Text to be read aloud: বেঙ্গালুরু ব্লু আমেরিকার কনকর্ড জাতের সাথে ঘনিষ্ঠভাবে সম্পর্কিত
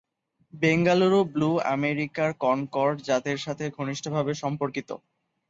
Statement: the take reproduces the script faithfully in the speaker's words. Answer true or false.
true